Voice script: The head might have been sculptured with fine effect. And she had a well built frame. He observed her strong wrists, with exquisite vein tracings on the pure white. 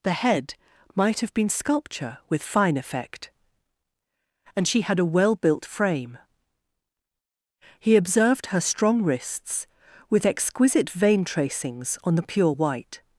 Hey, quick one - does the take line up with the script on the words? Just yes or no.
no